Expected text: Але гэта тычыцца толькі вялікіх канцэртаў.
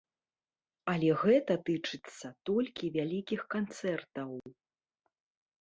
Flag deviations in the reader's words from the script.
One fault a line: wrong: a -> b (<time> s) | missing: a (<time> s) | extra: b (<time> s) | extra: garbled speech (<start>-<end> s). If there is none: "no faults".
no faults